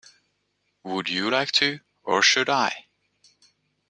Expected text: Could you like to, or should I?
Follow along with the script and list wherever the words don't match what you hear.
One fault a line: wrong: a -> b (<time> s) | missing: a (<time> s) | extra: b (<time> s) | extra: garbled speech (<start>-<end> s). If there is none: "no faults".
wrong: Could -> Would (0.8 s)